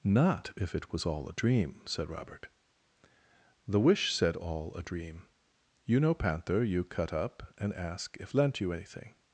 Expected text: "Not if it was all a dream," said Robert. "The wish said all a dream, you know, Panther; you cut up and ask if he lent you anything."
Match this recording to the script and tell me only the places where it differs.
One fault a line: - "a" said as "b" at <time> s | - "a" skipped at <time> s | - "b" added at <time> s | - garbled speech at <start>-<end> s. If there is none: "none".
- "he" skipped at 8.3 s